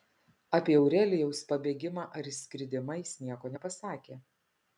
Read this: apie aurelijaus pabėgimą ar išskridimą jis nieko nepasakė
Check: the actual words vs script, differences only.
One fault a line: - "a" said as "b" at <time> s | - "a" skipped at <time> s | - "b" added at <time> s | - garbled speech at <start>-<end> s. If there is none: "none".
none